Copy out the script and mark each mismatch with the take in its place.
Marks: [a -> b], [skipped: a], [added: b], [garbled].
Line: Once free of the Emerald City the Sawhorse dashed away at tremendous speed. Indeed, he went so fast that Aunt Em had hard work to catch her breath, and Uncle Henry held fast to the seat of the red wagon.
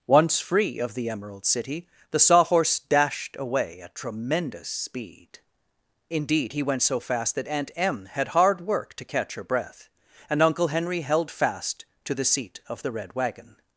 Once free of the Emerald City the Sawhorse dashed away at tremendous speed. Indeed, he went so fast that Aunt Em had hard work to catch her breath, and Uncle Henry held fast to the seat of the red wagon.